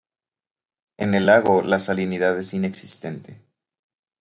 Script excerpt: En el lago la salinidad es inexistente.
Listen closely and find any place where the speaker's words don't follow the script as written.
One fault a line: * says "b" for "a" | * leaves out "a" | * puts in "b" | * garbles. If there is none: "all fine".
all fine